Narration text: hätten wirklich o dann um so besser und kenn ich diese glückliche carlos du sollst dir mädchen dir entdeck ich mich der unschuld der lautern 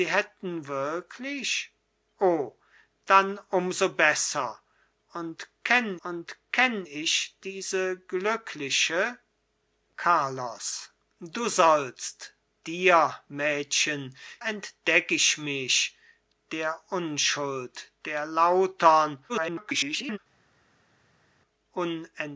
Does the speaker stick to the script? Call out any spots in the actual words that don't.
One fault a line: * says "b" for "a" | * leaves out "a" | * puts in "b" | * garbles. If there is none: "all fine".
* puts in "und kenn"
* leaves out "dir"
* garbles